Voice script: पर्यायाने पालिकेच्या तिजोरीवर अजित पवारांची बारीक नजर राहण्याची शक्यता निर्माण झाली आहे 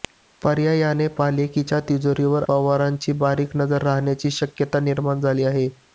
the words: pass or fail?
fail